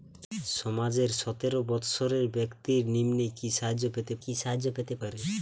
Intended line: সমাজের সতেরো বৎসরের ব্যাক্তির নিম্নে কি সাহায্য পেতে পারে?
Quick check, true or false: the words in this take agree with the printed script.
false